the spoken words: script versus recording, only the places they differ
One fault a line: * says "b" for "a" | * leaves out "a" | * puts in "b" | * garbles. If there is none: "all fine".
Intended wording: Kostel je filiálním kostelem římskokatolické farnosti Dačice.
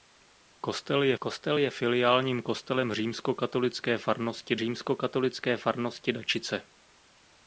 * puts in "kostel je"
* puts in "římskokatolické farnosti"